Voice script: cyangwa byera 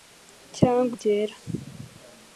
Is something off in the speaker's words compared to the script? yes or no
no